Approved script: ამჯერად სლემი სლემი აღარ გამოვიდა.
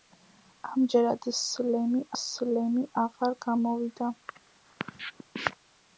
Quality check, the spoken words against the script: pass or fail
pass